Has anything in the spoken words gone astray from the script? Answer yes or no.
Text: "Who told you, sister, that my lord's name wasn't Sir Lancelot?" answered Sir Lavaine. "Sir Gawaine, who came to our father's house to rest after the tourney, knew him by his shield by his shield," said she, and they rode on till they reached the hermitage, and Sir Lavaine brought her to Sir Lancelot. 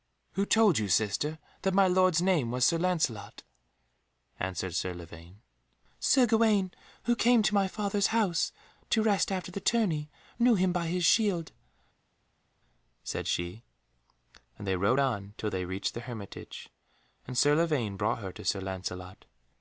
yes